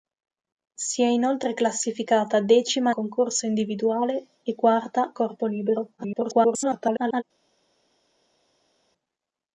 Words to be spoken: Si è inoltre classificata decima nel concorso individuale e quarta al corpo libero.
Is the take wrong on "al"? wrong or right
wrong